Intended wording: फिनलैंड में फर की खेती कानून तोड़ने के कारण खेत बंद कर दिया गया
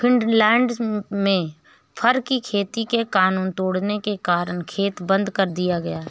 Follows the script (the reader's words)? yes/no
no